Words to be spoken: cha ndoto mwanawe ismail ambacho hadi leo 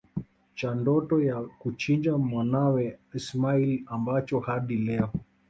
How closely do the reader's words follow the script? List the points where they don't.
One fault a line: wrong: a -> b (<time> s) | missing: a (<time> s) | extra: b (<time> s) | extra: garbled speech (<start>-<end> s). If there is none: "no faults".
extra: ya kuchinja (1.2 s)